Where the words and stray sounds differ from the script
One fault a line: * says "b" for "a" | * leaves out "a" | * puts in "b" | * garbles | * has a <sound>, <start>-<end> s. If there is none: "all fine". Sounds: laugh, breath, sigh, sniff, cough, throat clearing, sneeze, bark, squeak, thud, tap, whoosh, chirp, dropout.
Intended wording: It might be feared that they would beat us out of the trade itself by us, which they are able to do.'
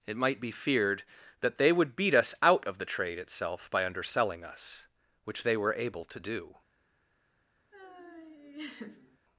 * puts in "underselling"
* says "were" for "are"
* has a laugh, 7.7-9.2 s